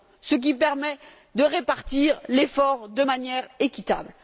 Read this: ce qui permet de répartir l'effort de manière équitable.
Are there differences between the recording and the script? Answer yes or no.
no